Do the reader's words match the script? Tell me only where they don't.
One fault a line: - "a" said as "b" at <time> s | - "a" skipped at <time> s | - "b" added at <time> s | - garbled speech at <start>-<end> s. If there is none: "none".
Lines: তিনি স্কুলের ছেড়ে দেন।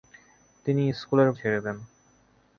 none